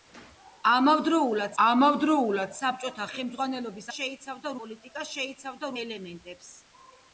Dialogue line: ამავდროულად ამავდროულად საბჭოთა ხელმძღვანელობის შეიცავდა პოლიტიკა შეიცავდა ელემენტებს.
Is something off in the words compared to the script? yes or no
no